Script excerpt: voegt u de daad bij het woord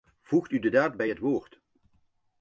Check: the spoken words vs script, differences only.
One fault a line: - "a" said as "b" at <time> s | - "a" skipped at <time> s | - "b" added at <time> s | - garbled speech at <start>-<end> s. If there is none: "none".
none